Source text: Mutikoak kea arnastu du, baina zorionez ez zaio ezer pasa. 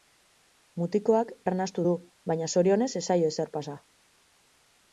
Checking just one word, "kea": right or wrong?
wrong